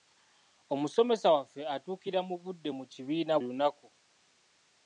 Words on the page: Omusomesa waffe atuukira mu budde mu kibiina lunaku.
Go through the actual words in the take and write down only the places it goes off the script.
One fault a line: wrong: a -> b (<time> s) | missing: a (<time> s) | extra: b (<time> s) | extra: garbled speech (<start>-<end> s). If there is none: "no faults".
no faults